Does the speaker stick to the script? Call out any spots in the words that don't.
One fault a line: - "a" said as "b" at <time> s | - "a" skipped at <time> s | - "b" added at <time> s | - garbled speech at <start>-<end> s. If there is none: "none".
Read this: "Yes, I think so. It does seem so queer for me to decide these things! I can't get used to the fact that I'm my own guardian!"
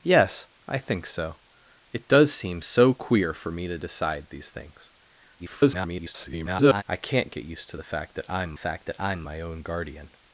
- garbled speech at 5.4-6.8 s
- "fact that I'm" added at 8.6 s